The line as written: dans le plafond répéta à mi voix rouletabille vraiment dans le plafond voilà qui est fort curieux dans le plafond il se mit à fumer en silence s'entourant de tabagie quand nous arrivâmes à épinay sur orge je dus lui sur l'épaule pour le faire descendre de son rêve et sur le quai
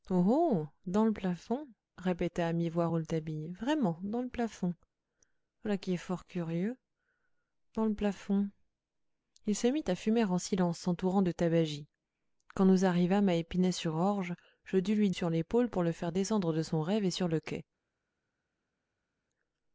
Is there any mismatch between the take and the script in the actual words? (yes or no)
no